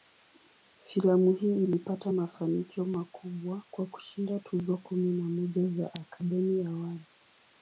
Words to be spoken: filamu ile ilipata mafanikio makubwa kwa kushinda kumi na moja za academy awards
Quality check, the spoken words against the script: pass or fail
fail